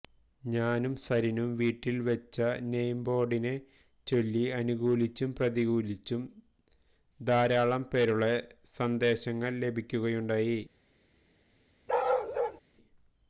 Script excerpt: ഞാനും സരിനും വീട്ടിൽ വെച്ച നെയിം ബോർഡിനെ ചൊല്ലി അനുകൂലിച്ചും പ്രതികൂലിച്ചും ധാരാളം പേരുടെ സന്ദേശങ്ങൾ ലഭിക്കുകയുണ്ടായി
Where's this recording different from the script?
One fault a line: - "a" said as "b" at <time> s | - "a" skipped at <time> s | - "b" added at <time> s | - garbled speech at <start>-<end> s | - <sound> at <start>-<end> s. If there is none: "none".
- bark at 11.9-12.6 s